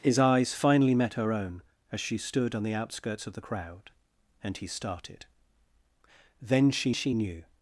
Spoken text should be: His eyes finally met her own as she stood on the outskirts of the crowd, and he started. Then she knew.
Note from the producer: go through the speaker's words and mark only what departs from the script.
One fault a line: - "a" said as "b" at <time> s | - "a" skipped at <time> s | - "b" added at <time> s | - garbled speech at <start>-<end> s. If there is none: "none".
- "she" added at 6.9 s